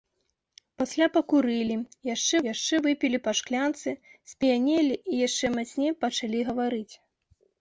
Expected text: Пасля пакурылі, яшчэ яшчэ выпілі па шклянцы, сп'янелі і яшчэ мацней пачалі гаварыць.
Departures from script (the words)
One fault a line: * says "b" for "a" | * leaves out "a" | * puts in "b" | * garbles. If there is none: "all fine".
all fine